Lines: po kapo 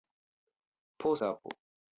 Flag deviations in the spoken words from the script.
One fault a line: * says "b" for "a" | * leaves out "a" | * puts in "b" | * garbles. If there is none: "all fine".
all fine